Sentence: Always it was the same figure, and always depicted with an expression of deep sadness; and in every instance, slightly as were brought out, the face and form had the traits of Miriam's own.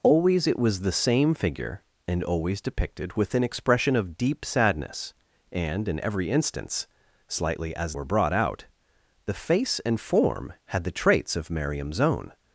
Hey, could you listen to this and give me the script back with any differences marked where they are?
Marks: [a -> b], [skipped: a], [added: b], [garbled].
Always it was the same figure, and always depicted with an expression of deep sadness; and in every instance, slightly as were brought out, the face and form had the traits of Miriam's own.